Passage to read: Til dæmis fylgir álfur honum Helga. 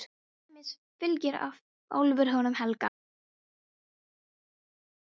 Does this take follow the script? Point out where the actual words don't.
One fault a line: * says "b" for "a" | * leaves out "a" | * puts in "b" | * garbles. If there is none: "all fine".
all fine